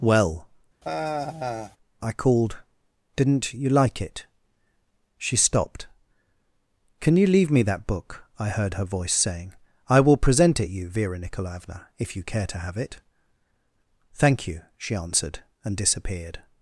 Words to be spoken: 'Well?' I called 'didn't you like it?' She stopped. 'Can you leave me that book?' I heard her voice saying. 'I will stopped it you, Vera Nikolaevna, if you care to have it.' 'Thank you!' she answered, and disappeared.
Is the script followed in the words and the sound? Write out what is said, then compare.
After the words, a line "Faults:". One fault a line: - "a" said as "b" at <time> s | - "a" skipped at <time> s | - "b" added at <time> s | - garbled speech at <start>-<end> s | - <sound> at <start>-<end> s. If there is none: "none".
'Well?' I called 'didn't you like it?' She stopped. 'Can you leave me that book?' I heard her voice saying. 'I will present it you, Vera Nikolaevna, if you care to have it.' 'Thank you!' she answered, and disappeared.
Faults:
- sigh at 0.8-1.8 s
- "stopped" said as "present" at 10.2 s